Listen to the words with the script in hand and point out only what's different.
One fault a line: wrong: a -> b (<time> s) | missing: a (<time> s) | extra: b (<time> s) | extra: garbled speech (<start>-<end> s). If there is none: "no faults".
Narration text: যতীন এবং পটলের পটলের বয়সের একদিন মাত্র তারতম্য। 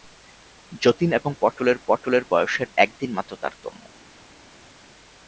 no faults